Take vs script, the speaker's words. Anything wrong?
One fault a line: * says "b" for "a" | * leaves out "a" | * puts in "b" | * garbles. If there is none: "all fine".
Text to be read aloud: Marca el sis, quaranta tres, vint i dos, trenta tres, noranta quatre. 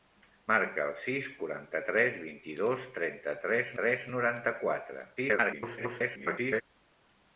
* puts in "tres"
* garbles